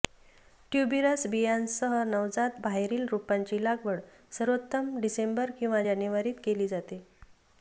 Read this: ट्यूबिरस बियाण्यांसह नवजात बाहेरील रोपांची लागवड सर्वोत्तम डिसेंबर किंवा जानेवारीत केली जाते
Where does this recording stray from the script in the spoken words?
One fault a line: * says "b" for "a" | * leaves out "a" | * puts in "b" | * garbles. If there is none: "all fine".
all fine